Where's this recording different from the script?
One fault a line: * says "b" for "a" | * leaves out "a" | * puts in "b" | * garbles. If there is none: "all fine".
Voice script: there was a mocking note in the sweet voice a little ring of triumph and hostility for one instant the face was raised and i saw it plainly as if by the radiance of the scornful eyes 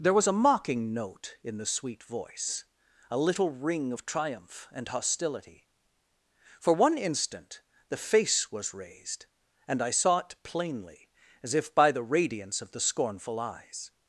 all fine